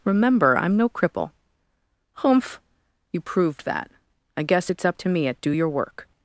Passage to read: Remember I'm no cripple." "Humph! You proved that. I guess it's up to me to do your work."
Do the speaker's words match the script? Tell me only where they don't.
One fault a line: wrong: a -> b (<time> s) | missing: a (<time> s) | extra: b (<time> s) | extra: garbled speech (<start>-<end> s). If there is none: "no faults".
wrong: to -> at (5.3 s)